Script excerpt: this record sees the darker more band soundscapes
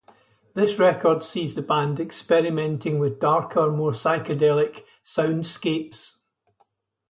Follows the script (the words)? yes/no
no